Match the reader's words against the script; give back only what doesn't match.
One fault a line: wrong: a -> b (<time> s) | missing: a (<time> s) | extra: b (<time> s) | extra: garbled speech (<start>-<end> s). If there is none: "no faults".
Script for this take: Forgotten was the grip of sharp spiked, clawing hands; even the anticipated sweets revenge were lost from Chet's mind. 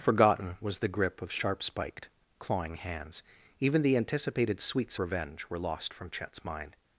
no faults